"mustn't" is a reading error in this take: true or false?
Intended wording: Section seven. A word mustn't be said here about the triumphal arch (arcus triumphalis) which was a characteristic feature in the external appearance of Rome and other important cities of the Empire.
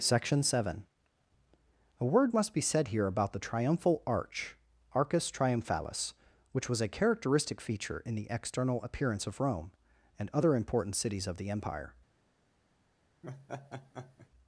true